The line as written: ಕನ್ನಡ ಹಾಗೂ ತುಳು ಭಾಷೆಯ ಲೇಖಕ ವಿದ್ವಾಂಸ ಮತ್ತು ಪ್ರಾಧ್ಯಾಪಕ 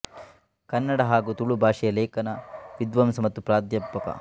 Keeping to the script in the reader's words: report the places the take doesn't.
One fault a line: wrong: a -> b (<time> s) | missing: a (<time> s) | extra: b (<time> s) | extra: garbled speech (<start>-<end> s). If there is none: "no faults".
no faults